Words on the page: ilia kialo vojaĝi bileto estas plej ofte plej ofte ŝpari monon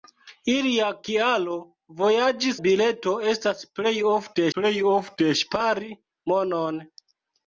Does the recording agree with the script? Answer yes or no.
yes